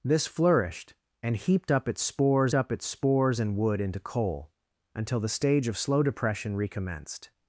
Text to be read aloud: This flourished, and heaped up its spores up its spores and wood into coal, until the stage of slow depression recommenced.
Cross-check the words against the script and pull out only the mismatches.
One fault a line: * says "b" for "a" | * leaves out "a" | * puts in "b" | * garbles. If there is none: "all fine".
all fine